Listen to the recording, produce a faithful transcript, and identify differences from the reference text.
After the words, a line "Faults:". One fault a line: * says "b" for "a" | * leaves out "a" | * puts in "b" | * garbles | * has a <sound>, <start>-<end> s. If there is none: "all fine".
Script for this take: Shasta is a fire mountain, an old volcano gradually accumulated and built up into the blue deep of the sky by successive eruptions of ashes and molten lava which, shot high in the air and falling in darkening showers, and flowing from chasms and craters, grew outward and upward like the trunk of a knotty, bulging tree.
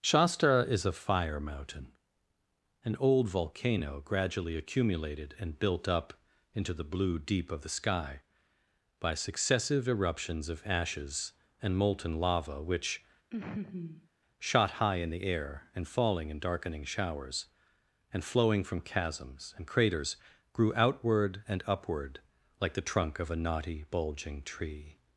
Shasta is a fire mountain, an old volcano gradually accumulated and built up into the blue deep of the sky by successive eruptions of ashes and molten lava which, shot high in the air and falling in darkening showers, and flowing from chasms and craters, grew outward and upward like the trunk of a knotty, bulging tree.
Faults:
* has a laugh, 13.3-14.1 s